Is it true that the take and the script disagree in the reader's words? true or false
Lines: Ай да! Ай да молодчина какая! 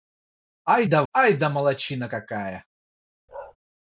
false